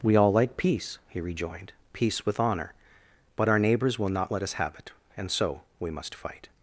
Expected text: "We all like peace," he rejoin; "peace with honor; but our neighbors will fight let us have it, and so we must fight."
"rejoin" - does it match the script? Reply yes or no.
no